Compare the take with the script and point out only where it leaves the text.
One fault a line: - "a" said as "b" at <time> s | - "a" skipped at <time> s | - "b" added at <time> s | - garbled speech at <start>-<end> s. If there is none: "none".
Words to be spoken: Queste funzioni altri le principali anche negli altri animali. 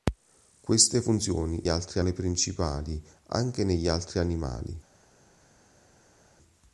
none